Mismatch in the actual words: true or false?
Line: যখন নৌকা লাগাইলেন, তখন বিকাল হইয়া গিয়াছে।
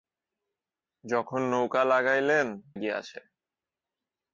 true